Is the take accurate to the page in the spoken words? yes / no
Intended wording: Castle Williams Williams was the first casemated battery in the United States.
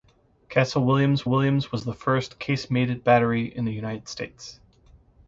yes